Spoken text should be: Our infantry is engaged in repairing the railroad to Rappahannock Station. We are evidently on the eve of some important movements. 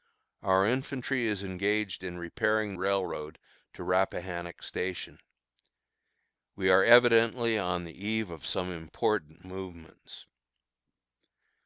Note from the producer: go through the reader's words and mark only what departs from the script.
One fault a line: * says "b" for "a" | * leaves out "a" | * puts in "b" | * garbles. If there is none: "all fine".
* leaves out "the"